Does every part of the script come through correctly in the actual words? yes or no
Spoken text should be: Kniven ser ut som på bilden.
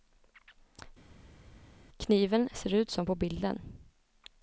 yes